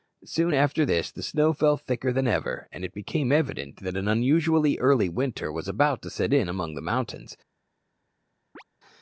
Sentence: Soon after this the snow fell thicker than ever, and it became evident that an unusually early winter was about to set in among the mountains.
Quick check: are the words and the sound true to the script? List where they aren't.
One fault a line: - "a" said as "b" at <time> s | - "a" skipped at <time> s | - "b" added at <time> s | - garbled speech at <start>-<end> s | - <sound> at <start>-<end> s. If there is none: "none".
- chirp at 8.6-8.6 s